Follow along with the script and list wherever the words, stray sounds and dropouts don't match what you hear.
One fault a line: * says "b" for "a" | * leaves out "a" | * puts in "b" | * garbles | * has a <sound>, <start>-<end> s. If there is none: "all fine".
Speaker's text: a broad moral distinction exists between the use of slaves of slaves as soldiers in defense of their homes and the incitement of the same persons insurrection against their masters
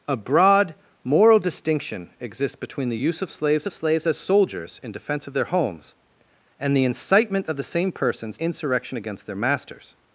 all fine